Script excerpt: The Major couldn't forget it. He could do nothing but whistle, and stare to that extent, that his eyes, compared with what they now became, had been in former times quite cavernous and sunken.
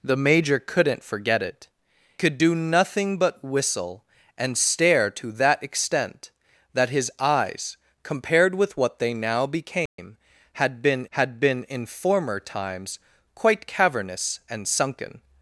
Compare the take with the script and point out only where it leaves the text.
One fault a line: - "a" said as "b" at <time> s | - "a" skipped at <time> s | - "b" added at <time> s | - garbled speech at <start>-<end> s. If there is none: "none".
- "He" skipped at 1.7 s
- "had been" added at 11.1 s